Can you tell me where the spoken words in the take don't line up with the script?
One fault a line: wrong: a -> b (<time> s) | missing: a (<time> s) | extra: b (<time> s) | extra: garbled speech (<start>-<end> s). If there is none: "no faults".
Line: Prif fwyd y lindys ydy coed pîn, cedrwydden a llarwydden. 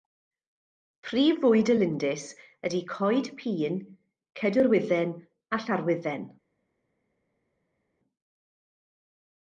no faults